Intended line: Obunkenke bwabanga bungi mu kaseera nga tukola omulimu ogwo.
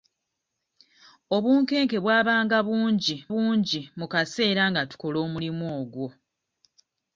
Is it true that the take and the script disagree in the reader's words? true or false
true